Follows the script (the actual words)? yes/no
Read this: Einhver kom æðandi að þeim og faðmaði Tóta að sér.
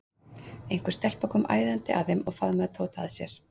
no